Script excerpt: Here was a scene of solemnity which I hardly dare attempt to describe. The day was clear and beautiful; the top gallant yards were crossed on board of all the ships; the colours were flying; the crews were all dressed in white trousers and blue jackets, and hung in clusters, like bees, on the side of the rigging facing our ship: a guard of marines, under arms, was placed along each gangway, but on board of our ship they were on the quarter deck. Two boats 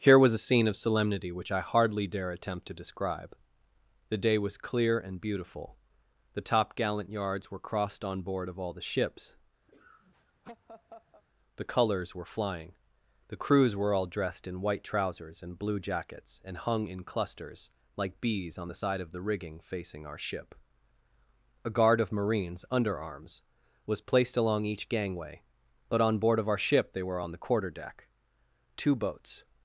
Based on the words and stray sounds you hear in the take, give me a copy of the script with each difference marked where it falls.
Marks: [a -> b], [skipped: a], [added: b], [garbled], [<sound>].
Here was a scene of solemnity which I hardly dare attempt to describe. The day was clear and beautiful; the top gallant yards were crossed on board of all the ships; [laugh] the colours were flying; the crews were all dressed in white trousers and blue jackets, and hung in clusters, like bees, on the side of the rigging facing our ship: a guard of marines, under arms, was placed along each gangway, but on board of our ship they were on the quarter deck. Two boats